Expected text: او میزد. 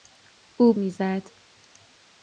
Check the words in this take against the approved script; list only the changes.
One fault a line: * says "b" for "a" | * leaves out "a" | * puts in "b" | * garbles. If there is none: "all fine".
all fine